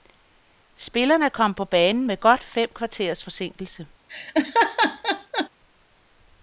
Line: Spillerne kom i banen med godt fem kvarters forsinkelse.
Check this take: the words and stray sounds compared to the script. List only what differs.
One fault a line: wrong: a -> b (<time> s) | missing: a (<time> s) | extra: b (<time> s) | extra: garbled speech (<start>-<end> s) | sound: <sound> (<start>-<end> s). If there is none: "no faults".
wrong: i -> på (1.5 s)
sound: laugh (4.1-5.5 s)